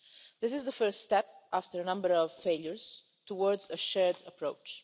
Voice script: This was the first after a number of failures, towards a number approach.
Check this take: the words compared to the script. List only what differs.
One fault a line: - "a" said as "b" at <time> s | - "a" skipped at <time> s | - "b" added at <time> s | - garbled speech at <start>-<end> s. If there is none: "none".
- "was" said as "is" at 0.5 s
- "step" added at 1.0 s
- "number" said as "shared" at 3.8 s